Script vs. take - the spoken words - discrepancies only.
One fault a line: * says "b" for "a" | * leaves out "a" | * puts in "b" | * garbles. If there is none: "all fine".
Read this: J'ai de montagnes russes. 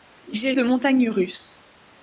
all fine